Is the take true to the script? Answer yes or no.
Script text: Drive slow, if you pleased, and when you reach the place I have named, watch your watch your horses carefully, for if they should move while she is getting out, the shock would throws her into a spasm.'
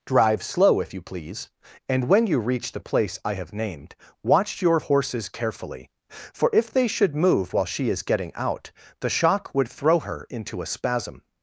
no